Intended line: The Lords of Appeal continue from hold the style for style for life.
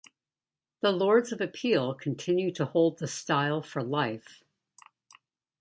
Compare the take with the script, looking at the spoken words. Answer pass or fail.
fail